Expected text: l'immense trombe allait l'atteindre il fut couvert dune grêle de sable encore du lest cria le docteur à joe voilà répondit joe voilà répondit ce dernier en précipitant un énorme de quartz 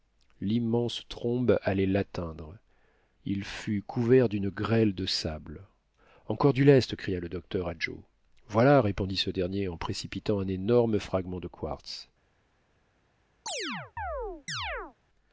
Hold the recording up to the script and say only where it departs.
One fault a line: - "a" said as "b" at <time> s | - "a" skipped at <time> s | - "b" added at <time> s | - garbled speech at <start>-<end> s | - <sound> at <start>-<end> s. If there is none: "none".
- "joe voilà répondit" skipped at 9.2 s
- "fragment" added at 11.0 s
- chirp at 13.5-15.0 s